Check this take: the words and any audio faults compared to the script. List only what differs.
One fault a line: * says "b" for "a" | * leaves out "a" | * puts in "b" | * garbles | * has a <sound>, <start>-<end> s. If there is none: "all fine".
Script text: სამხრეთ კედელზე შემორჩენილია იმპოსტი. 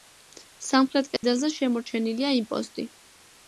* has a dropout, 1.2-1.2 s